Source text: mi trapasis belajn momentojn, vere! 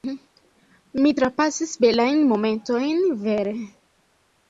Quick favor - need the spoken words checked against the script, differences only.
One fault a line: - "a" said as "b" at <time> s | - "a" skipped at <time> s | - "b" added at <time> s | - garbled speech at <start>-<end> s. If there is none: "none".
none